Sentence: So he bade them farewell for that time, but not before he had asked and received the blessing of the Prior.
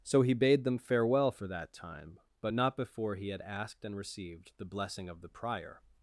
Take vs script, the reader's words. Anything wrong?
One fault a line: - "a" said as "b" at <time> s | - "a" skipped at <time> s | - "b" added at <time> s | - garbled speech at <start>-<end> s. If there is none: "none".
none